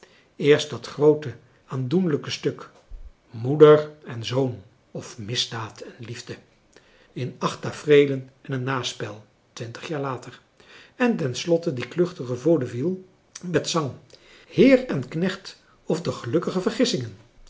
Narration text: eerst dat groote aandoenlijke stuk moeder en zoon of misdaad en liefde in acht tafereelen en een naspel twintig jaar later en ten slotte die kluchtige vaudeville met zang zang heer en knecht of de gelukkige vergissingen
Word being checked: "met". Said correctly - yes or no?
yes